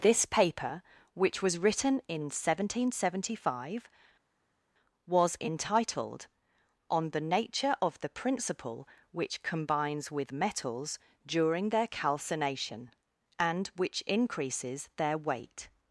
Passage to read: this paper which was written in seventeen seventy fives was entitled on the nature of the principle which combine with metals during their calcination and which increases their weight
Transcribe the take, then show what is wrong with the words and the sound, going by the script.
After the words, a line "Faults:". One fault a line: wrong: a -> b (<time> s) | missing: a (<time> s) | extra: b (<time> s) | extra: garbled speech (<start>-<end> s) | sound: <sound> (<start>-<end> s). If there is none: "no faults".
this paper which was written in seventeen seventy five was entitled on the nature of the principle which combines with metals during their calcination and which increases their weight
Faults:
wrong: fives -> five (3.5 s)
wrong: combine -> combines (9.4 s)